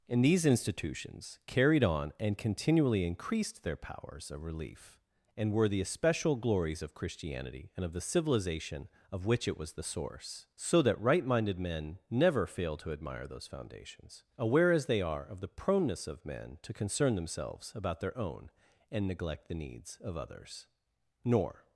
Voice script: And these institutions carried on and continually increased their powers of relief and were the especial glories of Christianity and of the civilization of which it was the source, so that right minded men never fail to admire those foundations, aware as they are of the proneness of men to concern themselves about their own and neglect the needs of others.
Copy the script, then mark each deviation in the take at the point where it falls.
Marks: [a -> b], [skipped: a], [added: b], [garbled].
And these institutions carried on and continually increased their powers of relief and were the especial glories of Christianity and of the civilization of which it was the source, so that right minded men never fail to admire those foundations, aware as they are of the proneness of men to concern themselves about their own and neglect the needs of others. [added: Nor]